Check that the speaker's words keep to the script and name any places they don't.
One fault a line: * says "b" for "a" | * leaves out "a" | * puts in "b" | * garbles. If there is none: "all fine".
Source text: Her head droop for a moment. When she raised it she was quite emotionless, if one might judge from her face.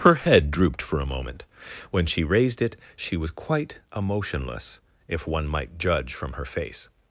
* says "drooped" for "droop"